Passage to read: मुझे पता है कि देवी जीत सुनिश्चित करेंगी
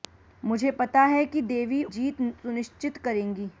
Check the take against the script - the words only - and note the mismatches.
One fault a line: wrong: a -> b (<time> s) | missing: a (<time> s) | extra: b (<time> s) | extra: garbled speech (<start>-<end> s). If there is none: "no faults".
no faults